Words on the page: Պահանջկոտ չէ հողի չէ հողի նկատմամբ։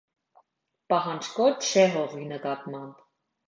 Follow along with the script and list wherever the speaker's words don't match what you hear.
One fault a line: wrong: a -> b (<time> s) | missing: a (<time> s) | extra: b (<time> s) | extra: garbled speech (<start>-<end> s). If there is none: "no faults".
missing: չէ հողի (2.3 s)